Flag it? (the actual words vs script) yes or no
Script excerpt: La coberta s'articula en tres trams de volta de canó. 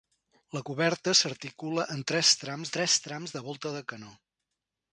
yes